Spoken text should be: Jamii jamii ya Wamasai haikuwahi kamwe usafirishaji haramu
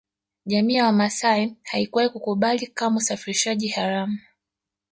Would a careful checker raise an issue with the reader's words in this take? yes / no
yes